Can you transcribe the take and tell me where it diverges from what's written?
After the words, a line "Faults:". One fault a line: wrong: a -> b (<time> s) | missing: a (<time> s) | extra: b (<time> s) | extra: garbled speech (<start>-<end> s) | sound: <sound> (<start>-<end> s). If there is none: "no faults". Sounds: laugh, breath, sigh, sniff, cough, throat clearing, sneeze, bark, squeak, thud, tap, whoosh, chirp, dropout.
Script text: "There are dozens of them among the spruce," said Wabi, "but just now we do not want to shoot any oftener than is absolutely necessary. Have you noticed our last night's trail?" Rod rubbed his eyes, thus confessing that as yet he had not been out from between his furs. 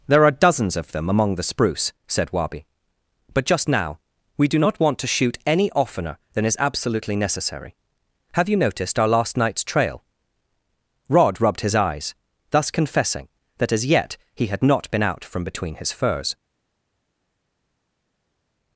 "There are dozens of them among the spruce," said Wabi, "but just now we do not want to shoot any oftener than is absolutely necessary. Have you noticed our last night's trail?" Rod rubbed his eyes, thus confessing that as yet he had not been out from between his furs.
Faults:
no faults